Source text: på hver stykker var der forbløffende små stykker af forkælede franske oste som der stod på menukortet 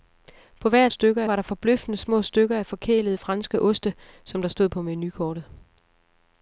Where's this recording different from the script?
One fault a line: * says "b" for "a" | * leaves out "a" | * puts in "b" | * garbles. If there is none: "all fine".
all fine